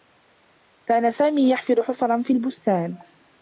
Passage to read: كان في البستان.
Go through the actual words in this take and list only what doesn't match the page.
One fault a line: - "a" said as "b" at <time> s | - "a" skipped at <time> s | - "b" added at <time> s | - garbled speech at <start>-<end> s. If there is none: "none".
- "سامي يحفر حفرا" added at 1.1 s